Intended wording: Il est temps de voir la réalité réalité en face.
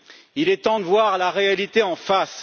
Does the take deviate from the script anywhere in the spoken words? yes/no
yes